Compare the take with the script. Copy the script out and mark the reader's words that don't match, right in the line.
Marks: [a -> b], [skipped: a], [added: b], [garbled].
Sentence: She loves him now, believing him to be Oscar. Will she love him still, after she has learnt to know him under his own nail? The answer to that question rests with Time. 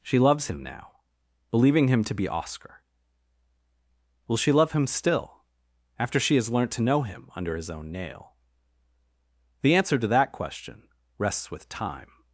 She loves him now, believing him to be Oscar. Will she love him still, after she has learnt to know him under his own nail? The answer to that question rests with Time.